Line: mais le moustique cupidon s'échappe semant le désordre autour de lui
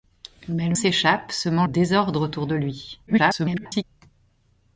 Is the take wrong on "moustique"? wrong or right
wrong